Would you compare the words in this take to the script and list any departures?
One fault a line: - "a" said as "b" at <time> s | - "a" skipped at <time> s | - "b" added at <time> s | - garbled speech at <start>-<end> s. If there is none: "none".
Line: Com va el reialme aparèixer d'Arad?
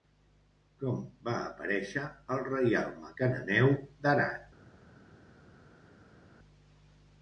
- "aparèixer" added at 1.5 s
- "aparèixer" said as "cananeu" at 3.2 s